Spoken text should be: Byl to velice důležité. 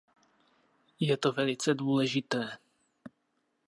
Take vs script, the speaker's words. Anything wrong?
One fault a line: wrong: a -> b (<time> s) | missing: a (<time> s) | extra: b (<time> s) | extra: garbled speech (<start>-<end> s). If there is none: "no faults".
wrong: Byl -> Je (1.0 s)